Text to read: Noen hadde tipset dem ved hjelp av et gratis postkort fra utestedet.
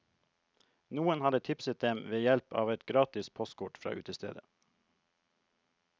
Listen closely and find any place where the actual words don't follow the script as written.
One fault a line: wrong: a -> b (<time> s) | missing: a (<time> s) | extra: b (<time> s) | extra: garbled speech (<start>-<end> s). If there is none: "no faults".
no faults